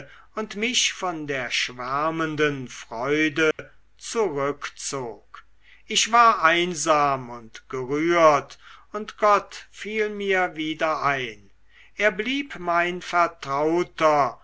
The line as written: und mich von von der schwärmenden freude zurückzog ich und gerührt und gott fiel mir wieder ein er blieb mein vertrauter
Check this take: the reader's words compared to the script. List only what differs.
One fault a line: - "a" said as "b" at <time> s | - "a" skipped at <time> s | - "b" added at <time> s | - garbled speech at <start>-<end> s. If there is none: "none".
- "von" skipped at 1.3 s
- "war einsam" added at 6.1 s